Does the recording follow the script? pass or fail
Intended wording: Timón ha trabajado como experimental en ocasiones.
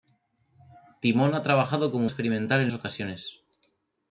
pass